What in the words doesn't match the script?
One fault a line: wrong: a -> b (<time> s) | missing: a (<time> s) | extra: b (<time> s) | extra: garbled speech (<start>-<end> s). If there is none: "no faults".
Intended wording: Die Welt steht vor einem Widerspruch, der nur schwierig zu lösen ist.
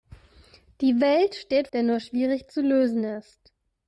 missing: vor einem Widerspruch (1.7 s)